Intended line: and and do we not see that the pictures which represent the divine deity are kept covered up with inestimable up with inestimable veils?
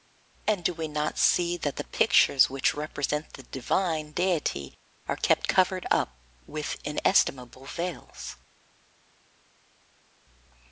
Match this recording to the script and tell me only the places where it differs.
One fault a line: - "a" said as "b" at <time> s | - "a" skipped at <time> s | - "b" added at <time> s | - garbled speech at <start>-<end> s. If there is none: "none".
- "and" skipped at 0.7 s
- "up with inestimable" skipped at 7.6 s